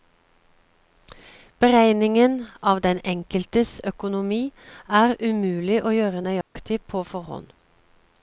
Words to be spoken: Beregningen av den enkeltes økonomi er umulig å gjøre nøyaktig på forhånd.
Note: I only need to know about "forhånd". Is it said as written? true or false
true